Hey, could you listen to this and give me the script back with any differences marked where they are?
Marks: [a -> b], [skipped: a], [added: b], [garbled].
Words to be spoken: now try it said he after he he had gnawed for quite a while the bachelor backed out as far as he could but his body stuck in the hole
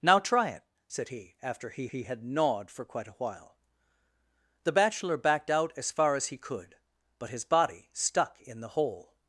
now try it said he after he he had gnawed for quite a while the bachelor backed out as far as he could but his body stuck in the hole